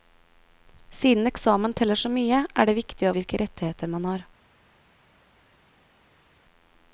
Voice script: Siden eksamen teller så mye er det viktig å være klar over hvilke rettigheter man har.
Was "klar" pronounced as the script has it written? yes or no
no